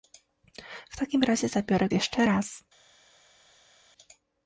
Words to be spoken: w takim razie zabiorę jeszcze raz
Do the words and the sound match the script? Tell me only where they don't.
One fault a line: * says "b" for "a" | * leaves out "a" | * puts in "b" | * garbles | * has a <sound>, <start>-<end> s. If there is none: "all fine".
all fine